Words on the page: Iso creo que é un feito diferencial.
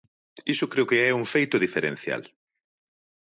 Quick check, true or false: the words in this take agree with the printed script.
true